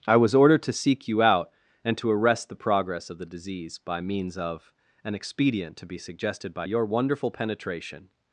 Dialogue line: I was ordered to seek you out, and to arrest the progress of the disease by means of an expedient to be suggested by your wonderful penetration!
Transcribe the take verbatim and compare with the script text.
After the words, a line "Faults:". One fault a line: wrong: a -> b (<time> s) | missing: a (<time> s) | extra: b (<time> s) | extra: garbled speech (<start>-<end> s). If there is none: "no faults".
I was ordered to seek you out, and to arrest the progress of the disease by means of an expedient to be suggested by your wonderful penetration!
Faults:
no faults